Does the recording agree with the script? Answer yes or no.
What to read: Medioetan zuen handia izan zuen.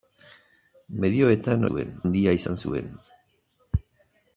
yes